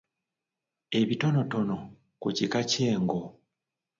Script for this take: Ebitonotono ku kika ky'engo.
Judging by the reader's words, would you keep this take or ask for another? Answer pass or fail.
pass